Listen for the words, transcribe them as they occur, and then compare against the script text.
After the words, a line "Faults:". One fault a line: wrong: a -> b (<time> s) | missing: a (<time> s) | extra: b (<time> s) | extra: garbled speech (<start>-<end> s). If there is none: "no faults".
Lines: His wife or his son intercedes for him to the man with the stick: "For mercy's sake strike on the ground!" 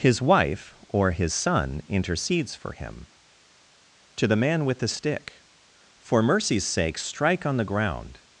His wife or his son intercedes for him to the man with the stick: "For mercy's sake strike on the ground!"
Faults:
no faults